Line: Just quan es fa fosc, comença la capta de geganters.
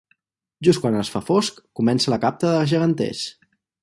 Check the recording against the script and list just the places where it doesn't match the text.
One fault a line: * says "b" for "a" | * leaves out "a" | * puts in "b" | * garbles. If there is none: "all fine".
all fine